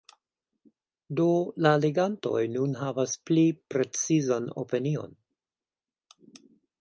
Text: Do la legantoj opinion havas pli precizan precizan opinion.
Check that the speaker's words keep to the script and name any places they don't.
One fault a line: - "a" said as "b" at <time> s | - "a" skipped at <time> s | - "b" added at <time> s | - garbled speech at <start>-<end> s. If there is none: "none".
- "opinion" said as "nun" at 2.5 s
- "precizan" skipped at 4.5 s